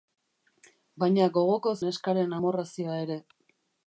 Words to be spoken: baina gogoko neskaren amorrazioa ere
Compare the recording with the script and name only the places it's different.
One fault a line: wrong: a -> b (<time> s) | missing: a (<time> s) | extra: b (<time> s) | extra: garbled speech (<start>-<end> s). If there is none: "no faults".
no faults